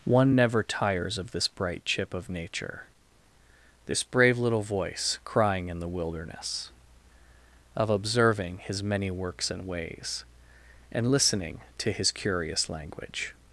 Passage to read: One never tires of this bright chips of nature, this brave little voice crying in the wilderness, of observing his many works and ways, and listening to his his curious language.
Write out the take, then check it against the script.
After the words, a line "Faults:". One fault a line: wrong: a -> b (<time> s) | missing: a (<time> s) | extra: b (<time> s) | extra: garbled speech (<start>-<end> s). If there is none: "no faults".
One never tires of this bright chip of nature, this brave little voice crying in the wilderness, of observing his many works and ways, and listening to his curious language.
Faults:
wrong: chips -> chip (1.8 s)
missing: his (12.1 s)